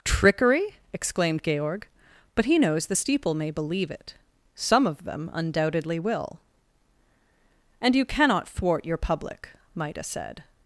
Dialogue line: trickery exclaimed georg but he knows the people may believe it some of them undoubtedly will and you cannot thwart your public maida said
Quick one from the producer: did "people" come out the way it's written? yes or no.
no